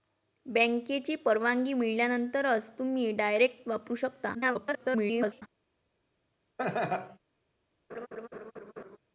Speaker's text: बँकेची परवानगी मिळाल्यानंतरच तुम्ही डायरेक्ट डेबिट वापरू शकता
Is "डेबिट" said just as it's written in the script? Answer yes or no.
no